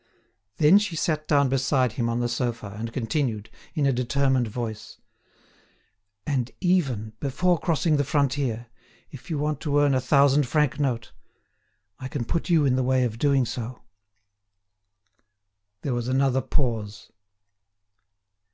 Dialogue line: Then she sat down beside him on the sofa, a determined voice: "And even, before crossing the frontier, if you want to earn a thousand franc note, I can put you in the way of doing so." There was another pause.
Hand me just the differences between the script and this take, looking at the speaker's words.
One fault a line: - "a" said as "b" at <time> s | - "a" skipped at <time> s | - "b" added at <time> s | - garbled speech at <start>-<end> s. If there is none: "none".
- "and continued in" added at 2.8 s